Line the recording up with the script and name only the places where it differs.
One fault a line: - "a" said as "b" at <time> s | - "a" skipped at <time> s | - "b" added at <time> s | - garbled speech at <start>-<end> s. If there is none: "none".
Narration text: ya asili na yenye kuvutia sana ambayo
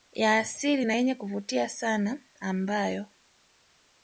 none